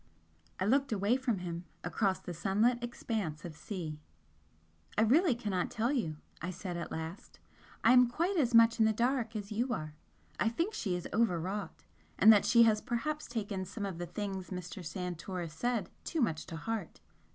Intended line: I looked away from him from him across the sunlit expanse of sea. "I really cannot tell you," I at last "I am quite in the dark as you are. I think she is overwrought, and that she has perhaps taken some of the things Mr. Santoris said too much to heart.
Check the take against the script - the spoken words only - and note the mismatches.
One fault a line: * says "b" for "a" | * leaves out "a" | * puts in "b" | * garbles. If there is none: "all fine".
* leaves out "from him"
* puts in "said"
* puts in "as much"